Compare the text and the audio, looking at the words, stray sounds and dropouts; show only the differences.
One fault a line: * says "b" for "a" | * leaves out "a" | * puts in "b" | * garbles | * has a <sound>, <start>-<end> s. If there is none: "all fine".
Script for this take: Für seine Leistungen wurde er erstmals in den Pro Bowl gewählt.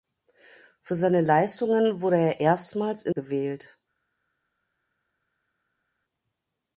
* leaves out "den Pro Bowl"